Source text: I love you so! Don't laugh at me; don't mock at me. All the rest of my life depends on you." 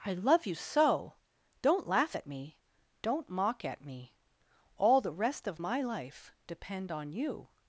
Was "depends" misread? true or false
true